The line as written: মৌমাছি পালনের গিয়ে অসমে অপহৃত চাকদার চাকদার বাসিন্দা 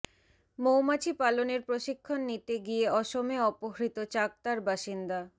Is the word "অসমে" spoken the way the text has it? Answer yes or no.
yes